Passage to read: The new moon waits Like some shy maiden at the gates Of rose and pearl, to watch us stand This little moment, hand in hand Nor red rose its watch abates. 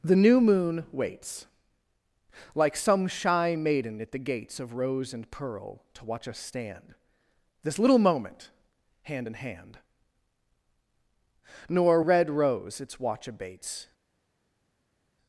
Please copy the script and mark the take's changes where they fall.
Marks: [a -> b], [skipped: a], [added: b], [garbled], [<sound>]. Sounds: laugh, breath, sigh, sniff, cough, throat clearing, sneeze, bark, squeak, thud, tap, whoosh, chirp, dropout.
The new moon waits Like some shy maiden at the gates Of rose and pearl, to watch us stand This little moment, hand in hand Nor red rose its watch abates.